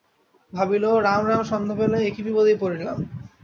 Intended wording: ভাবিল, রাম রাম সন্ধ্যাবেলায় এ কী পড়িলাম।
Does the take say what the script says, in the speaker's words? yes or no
no